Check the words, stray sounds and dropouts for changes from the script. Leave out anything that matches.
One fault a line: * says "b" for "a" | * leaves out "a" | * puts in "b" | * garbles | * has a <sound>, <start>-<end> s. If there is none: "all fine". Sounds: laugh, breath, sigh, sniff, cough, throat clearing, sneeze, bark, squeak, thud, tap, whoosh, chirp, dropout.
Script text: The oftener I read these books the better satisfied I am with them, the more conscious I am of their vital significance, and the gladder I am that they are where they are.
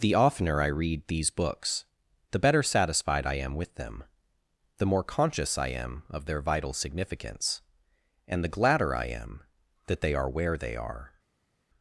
all fine